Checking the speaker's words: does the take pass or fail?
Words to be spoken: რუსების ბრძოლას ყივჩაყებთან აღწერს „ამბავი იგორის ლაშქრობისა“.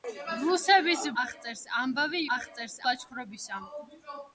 fail